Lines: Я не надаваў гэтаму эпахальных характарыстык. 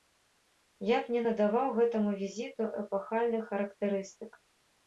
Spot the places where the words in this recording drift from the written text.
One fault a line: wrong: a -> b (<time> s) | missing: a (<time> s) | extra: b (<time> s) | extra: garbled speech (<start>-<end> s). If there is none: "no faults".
extra: б (1.0 s)
extra: візіту (2.2 s)